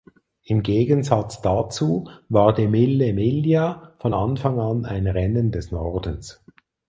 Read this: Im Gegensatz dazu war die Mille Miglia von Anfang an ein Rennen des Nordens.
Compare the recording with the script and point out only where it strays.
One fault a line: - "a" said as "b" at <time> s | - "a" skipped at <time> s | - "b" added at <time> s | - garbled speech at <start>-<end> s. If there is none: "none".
none